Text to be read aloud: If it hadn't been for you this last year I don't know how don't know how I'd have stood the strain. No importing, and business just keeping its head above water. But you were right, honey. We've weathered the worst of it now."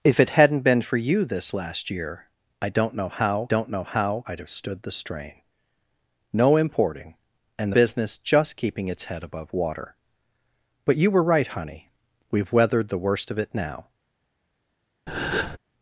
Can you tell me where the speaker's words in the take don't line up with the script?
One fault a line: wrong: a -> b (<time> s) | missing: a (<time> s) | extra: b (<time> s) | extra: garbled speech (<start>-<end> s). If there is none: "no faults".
no faults